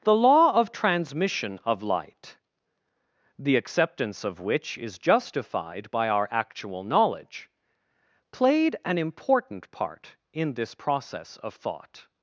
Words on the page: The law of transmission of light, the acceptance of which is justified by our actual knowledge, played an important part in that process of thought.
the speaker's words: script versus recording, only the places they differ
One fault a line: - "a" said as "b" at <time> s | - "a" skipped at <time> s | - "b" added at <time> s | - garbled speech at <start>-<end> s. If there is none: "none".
- "that" said as "this" at 10.6 s